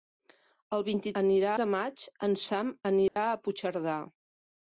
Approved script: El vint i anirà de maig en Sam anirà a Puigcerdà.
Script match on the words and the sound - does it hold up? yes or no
no